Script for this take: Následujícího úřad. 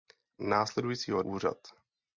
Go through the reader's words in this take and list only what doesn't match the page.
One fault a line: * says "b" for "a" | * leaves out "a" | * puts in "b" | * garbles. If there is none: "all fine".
all fine